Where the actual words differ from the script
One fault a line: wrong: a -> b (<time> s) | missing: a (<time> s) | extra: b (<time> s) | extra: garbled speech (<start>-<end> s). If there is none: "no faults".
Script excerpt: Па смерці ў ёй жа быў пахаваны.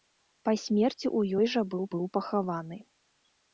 extra: быў (1.9 s)